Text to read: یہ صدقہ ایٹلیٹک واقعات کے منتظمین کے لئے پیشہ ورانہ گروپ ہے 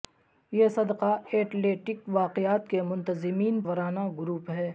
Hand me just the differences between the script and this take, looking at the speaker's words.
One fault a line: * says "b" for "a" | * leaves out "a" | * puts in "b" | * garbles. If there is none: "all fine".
* leaves out "کے لئے پیشہ"